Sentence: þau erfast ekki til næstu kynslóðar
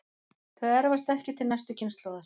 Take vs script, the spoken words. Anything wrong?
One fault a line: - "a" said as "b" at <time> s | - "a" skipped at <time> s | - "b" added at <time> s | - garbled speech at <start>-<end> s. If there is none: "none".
none